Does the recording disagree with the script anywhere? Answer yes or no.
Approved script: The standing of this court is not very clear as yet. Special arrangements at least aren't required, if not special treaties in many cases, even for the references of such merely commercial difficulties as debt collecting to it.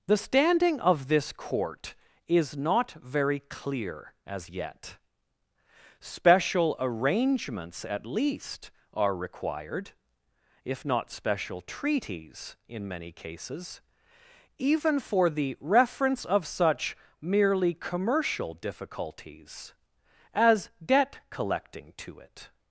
yes